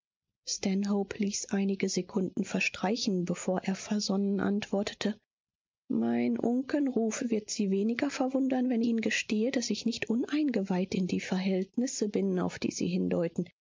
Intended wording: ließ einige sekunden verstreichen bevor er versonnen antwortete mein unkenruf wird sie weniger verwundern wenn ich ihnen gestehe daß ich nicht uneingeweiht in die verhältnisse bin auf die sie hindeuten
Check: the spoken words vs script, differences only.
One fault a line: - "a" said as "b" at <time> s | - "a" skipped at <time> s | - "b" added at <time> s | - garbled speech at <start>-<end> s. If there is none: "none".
- "ich" skipped at 8.8 s